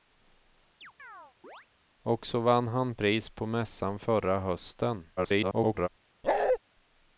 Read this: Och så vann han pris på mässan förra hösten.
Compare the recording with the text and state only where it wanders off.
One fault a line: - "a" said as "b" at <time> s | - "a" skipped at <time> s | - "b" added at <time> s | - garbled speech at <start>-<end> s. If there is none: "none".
- garbled speech at 5.2-5.9 s